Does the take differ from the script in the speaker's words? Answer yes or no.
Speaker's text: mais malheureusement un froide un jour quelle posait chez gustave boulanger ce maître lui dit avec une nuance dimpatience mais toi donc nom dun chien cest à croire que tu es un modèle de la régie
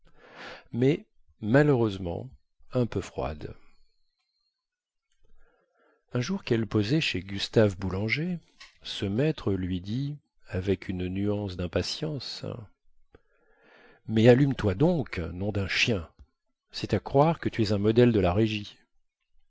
yes